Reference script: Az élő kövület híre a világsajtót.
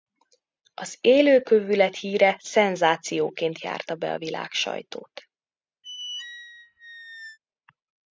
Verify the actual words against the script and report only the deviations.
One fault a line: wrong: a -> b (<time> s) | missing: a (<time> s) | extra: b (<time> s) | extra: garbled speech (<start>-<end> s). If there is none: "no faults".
extra: szenzációként járta be (2.4 s)